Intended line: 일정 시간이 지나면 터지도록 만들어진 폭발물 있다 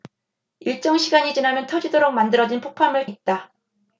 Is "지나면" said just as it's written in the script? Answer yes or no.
yes